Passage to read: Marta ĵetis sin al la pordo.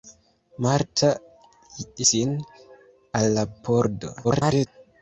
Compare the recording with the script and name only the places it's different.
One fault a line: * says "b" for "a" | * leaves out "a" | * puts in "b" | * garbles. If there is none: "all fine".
* leaves out "ĵetis"
* garbles